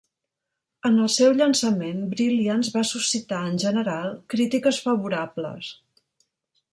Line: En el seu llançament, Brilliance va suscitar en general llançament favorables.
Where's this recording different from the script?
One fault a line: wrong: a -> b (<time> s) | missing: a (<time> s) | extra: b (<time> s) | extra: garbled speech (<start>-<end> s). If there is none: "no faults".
wrong: llançament -> crítiques (4.3 s)